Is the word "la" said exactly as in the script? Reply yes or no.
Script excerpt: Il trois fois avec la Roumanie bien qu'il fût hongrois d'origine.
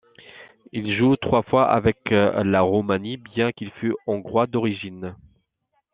yes